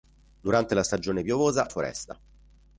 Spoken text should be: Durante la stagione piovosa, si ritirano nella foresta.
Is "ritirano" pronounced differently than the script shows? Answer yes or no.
yes